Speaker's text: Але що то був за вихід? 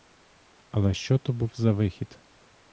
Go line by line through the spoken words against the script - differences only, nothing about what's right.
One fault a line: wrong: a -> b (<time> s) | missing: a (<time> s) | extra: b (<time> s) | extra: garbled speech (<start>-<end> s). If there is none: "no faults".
no faults